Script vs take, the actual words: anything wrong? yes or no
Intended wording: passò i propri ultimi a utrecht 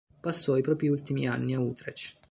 yes